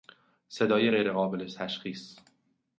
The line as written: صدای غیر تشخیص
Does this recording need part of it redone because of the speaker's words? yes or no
yes